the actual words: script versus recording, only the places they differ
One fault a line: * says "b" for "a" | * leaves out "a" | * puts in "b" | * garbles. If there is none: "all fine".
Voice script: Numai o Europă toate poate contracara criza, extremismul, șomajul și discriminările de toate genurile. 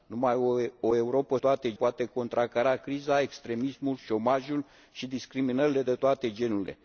all fine